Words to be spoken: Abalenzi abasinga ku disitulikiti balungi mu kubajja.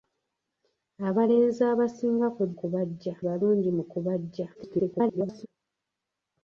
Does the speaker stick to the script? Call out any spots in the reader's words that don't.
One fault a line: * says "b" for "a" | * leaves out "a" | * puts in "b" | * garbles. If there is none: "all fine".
* says "kubajja" for "disitulikiti"
* garbles